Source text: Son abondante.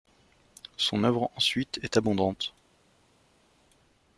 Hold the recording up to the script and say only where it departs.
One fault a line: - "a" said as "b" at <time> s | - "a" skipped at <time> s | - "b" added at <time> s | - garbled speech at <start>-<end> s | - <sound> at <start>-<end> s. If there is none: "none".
- "œuvre ensuite est" added at 1.0 s